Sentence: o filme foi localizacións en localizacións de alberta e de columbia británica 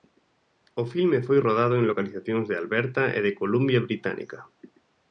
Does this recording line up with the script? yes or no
no